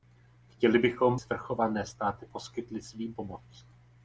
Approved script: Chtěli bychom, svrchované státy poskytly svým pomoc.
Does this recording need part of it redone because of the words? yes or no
no